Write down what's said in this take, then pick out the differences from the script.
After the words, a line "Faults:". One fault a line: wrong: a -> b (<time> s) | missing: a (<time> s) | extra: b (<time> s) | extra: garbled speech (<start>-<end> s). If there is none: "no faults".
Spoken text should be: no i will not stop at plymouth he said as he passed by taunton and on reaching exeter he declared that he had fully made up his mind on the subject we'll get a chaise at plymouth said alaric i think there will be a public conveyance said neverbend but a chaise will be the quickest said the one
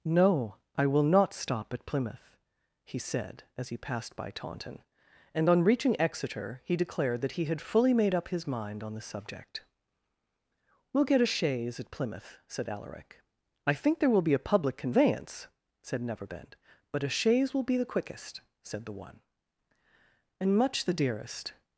no i will not stop at plymouth he said as he passed by taunton and on reaching exeter he declared that he had fully made up his mind on the subject we'll get a chaise at plymouth said alaric i think there will be a public conveyance said neverbend but a chaise will be the quickest said the one and much the dearest
Faults:
extra: and much the dearest (20.4 s)